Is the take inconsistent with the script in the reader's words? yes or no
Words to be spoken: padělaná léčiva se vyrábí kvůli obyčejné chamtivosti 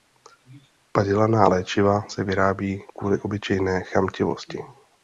no